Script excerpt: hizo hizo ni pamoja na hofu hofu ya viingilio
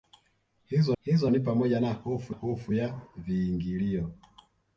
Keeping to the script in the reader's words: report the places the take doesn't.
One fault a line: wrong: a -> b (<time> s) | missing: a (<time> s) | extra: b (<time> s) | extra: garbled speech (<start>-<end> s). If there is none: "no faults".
no faults